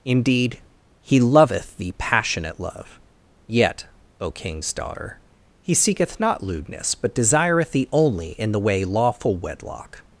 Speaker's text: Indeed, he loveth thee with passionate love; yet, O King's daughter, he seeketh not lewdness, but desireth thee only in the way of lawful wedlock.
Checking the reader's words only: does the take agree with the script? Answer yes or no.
no